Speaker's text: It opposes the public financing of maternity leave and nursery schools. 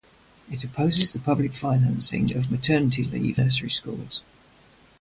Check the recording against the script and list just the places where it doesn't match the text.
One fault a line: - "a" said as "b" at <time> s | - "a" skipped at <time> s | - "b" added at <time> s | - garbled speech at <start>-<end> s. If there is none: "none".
- "and" skipped at 3.4 s